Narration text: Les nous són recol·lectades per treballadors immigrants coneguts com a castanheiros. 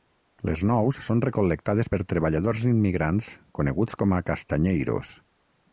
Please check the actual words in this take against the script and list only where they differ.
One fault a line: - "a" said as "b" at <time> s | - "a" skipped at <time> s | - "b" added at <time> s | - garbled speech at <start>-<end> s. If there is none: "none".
none